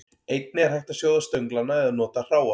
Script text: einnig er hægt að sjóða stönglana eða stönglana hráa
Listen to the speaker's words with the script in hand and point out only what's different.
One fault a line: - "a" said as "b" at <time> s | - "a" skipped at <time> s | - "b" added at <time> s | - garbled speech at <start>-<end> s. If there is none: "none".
- "stönglana" said as "nota" at 2.0 s